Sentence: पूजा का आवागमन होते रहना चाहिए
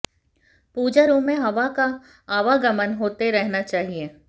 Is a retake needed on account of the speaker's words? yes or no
yes